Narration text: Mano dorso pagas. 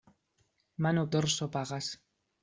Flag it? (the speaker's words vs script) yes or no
no